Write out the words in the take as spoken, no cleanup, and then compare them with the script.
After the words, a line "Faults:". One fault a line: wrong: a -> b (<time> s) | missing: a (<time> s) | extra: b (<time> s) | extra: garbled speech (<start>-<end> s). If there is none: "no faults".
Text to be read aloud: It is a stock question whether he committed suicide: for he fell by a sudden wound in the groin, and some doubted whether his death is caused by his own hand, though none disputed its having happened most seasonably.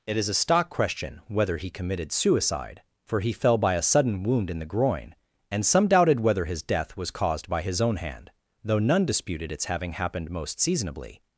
It is a stock question whether he committed suicide: for he fell by a sudden wound in the groin, and some doubted whether his death was caused by his own hand, though none disputed its having happened most seasonably.
Faults:
wrong: is -> was (6.9 s)